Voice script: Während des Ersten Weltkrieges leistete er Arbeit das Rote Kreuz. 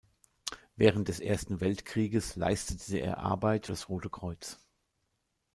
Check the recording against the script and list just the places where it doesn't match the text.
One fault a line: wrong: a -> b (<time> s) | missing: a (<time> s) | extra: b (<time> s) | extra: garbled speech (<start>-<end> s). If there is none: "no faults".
no faults